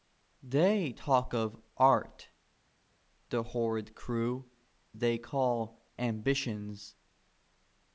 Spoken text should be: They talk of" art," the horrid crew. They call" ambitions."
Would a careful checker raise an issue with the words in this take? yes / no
no